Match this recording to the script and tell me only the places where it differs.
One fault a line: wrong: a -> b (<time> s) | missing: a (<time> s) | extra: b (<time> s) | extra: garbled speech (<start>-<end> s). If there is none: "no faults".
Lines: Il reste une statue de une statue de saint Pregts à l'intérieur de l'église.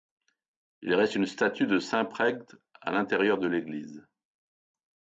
missing: une statue de (1.8 s)